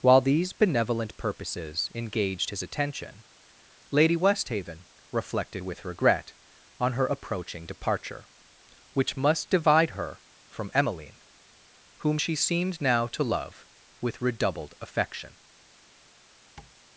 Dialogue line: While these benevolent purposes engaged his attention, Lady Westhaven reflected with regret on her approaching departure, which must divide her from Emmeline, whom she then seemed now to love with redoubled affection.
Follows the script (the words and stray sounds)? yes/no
no